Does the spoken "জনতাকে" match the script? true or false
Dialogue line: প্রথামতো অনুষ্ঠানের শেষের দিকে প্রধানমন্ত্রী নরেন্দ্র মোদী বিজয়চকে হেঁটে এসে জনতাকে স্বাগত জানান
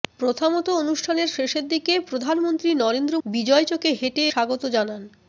false